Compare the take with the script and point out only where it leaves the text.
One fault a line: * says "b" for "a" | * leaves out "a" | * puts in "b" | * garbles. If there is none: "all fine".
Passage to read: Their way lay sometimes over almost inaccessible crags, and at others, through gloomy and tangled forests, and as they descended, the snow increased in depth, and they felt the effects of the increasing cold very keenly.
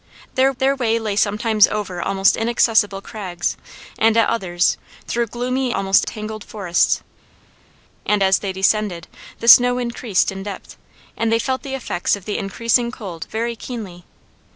* puts in "their"
* says "almost" for "and"